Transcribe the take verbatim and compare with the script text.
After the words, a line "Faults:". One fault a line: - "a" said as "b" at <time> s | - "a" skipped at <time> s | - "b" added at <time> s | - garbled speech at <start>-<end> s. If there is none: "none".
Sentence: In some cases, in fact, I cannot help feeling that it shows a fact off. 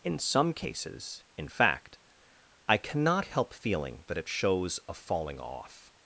In some cases, in fact, I cannot help feeling that it shows a falling off.
Faults:
- "fact" said as "falling" at 4.9 s